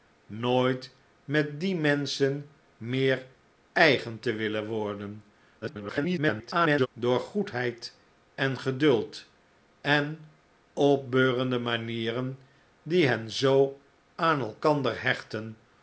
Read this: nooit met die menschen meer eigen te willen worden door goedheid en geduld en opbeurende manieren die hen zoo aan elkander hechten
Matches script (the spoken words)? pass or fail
fail